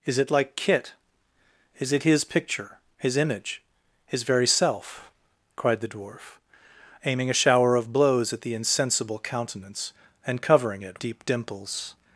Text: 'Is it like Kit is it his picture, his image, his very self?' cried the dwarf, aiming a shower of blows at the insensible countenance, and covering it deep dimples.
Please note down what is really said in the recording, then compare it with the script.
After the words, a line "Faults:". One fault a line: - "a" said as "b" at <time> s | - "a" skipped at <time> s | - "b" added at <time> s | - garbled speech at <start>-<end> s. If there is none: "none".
'Is it like Kit is it his picture, his image, his very self?' cried the dwarf, aiming a shower of blows at the insensible countenance, and covering it deep dimples.
Faults:
none